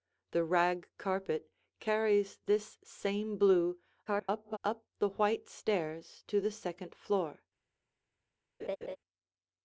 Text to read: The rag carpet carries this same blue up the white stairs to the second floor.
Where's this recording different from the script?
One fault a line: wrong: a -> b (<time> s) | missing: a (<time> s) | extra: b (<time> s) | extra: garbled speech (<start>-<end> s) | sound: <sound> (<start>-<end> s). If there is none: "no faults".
extra: garbled speech (4.1-4.6 s)
sound: laugh (8.6-9.0 s)